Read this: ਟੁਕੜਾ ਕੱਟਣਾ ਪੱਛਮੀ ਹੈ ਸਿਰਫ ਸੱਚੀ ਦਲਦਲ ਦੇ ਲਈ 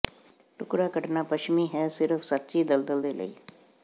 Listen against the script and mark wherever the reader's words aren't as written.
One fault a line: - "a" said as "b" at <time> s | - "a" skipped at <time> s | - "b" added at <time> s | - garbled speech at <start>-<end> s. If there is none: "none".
none